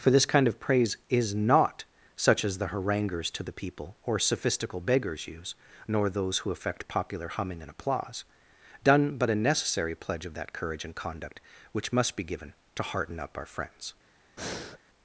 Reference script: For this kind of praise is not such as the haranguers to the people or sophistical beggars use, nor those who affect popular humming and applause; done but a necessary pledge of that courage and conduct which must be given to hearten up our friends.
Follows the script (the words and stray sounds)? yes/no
no